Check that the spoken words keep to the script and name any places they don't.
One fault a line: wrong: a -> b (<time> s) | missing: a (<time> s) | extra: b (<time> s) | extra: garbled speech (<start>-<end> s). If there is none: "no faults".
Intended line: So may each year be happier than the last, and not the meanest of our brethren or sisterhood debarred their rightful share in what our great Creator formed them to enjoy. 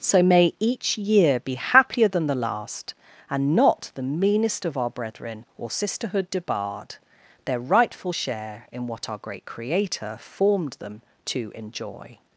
no faults